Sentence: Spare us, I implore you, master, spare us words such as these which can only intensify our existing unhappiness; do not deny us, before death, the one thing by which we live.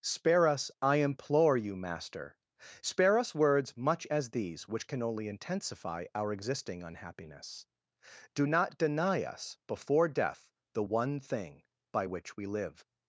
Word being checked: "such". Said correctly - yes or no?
no